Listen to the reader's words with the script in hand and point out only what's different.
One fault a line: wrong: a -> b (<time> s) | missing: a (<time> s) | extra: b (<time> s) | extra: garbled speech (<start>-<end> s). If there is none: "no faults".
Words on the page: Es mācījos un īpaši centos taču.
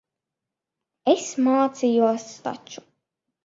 missing: un īpaši centos (2.3 s)